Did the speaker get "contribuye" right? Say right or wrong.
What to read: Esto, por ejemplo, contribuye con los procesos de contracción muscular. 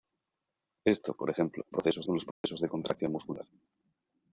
wrong